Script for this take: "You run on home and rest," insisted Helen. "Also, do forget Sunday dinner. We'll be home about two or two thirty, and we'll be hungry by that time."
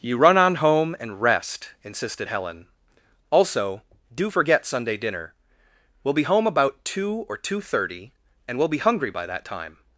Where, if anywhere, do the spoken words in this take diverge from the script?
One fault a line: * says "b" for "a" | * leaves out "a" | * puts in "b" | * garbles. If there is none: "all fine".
all fine